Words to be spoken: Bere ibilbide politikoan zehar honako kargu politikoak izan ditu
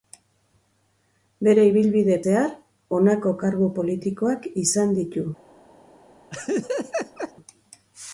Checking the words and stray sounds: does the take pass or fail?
fail